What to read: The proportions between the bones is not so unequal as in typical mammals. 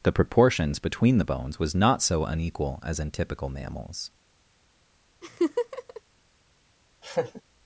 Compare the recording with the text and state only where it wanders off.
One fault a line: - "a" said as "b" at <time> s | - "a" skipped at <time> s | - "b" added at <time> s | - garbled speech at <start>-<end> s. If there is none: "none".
- "is" said as "was" at 1.6 s